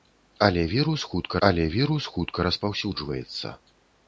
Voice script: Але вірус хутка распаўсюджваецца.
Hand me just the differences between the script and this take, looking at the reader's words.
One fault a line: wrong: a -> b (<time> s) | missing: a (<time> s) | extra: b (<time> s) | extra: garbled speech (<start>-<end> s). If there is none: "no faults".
extra: але вірус хутка (1.5 s)